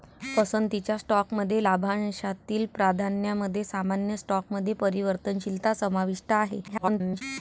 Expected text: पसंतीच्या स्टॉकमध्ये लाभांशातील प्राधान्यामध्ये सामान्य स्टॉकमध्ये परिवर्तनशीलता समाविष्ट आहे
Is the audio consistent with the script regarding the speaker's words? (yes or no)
no